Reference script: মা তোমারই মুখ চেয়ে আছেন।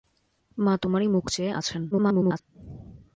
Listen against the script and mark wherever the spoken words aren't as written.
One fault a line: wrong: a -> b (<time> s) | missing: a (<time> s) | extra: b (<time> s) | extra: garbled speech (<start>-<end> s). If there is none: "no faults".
extra: garbled speech (1.9-2.4 s)